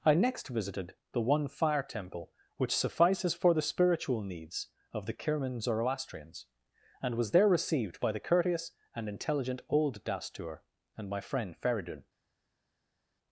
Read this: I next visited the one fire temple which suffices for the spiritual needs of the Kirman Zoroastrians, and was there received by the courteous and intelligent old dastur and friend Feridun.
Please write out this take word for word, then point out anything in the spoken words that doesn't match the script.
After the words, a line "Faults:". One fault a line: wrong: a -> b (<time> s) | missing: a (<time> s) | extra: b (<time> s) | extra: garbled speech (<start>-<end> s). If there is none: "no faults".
I next visited the one fire temple which suffices for the spiritual needs of the Kirman Zoroastrians, and was there received by the courteous and intelligent old dastur and my friend Feridun.
Faults:
extra: my (11.1 s)